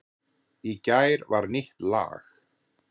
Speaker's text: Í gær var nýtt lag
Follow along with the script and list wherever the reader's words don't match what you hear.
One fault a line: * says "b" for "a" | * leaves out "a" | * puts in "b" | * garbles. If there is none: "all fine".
all fine